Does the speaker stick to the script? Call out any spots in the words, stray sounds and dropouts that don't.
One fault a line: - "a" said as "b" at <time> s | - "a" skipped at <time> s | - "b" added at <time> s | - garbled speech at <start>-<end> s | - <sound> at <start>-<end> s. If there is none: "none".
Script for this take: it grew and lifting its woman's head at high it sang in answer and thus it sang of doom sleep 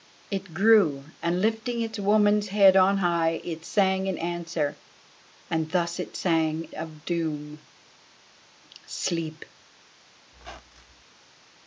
- "at" said as "on" at 2.8 s
- squeak at 10.3-11.0 s